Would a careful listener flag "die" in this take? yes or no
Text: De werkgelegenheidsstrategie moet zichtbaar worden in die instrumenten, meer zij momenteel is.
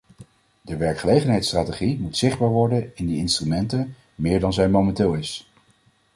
no